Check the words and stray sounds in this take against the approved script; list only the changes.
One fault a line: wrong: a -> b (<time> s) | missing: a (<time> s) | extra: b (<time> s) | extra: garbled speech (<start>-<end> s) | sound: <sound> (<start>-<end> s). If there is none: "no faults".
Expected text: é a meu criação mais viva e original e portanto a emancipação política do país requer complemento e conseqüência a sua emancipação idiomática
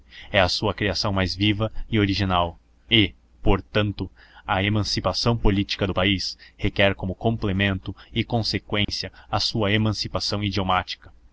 wrong: meu -> sua (0.5 s)
extra: como (7.0 s)
sound: dropout (8.8-8.9 s)